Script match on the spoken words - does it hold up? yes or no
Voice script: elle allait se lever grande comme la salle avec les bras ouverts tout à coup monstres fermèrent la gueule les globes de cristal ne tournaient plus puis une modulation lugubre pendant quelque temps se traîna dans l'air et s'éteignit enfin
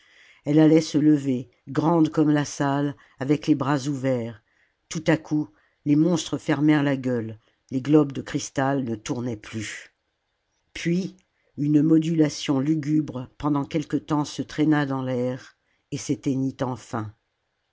no